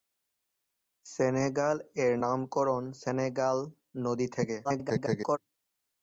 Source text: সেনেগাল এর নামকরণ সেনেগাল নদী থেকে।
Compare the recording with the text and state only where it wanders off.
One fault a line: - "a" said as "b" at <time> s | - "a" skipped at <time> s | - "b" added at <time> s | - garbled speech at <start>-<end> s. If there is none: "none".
- garbled speech at 4.6-5.4 s